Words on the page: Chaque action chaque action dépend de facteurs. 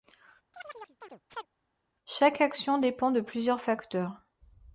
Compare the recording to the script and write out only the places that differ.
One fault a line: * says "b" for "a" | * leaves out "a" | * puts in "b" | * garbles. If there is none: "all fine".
* leaves out "chaque action"
* puts in "plusieurs"